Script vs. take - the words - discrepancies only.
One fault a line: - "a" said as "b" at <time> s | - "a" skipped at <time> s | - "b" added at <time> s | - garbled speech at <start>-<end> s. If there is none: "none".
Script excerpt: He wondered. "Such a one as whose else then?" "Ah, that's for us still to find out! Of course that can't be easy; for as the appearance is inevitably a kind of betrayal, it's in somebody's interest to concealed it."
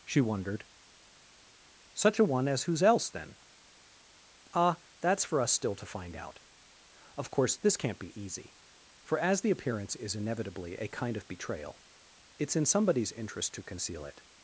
- "He" said as "She" at 0.1 s
- "that" said as "this" at 7.6 s
- "concealed" said as "conceal" at 13.6 s